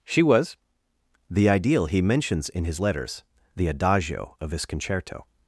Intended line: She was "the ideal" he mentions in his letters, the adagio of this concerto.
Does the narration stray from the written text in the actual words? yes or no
yes